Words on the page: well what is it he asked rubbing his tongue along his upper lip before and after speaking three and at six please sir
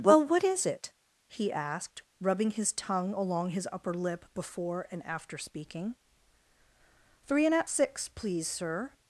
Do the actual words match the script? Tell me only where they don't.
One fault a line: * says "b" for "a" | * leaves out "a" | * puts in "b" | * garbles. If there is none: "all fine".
all fine